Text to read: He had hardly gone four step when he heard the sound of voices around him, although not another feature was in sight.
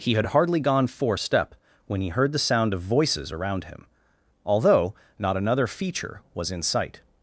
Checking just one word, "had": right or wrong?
right